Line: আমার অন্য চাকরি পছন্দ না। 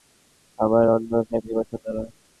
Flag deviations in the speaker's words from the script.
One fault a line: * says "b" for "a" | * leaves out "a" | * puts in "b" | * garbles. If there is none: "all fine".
all fine